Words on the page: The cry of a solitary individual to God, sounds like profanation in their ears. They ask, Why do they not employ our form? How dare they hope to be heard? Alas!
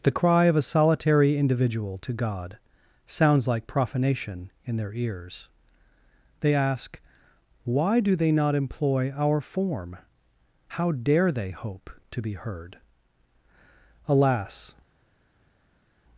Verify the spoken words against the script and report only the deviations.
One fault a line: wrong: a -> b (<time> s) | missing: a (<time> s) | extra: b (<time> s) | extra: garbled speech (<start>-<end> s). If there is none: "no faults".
no faults